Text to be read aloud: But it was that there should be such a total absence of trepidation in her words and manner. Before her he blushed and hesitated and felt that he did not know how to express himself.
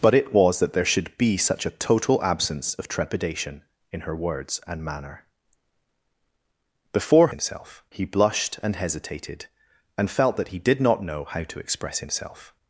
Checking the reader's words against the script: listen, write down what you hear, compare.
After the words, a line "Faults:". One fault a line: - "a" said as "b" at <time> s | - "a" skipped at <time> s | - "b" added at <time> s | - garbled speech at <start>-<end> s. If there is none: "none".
But it was that there should be such a total absence of trepidation in her words and manner. Before himself he blushed and hesitated and felt that he did not know how to express himself.
Faults:
- "her" said as "himself" at 7.3 s